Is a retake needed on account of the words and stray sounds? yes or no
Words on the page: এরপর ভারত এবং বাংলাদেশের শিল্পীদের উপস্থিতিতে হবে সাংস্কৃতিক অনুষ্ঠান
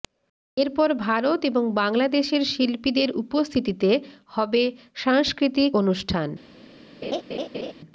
yes